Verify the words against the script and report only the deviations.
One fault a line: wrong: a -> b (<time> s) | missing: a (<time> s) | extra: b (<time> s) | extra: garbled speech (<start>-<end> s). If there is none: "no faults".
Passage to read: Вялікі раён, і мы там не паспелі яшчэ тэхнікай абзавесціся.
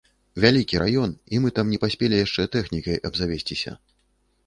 no faults